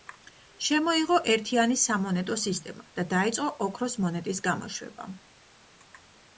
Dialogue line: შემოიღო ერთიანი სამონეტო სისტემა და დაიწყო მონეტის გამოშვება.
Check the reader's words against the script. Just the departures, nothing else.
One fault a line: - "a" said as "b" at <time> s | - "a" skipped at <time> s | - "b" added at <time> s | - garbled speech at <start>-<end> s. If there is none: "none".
- "ოქროს" added at 3.7 s